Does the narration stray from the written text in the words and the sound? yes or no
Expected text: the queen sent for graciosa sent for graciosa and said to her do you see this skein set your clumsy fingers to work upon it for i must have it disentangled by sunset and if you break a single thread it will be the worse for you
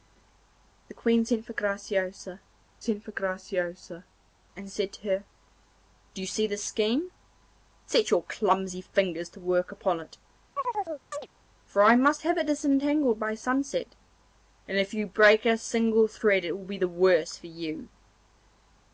yes